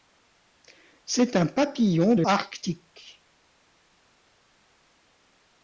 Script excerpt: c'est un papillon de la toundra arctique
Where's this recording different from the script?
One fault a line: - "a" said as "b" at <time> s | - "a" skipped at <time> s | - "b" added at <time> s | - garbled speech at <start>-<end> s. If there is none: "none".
- "la toundra" skipped at 2.2 s